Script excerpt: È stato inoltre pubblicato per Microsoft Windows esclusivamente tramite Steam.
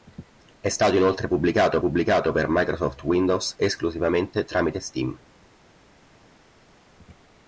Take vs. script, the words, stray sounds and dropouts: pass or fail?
fail